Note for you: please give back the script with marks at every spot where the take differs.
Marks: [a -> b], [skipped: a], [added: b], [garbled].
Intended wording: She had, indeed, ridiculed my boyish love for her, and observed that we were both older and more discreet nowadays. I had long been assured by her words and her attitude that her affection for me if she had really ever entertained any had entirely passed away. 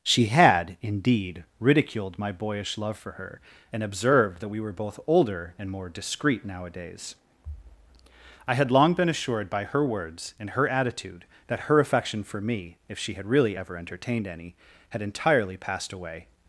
She had, indeed, ridiculed my boyish love for her, and observed that we were both older and more discreet nowadays. I had long been assured by her words and her attitude that her affection for me if she had really ever entertained any had entirely passed away.